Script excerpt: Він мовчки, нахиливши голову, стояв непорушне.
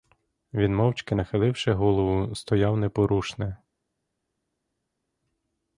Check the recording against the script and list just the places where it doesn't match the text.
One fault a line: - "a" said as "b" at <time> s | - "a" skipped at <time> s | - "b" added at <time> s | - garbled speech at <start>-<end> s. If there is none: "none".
none